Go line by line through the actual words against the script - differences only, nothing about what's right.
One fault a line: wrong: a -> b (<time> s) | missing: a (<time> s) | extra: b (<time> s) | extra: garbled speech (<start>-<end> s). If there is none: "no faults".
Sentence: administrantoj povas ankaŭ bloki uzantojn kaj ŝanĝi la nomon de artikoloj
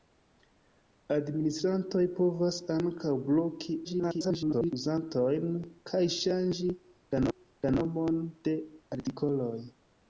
extra: garbled speech (3.8-4.7 s)
extra: la (7.3 s)